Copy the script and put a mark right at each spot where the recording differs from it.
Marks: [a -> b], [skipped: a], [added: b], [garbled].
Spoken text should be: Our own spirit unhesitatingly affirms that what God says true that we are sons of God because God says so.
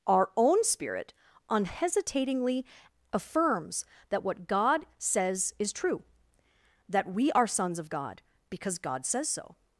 Our own spirit unhesitatingly affirms that what God says [added: is] true that we are sons of God because God says so.